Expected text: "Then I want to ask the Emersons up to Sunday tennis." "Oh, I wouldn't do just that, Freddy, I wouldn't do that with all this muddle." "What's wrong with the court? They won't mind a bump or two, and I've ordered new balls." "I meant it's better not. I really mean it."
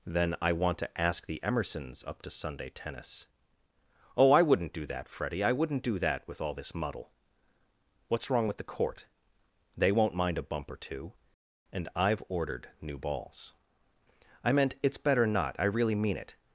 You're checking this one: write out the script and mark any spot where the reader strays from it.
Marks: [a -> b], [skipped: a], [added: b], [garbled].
"Then I want to ask the Emersons up to Sunday tennis." "Oh, I wouldn't do [skipped: just] that, Freddy, I wouldn't do that with all this muddle." "What's wrong with the court? They won't mind a bump or two, and I've ordered new balls." "I meant it's better not. I really mean it."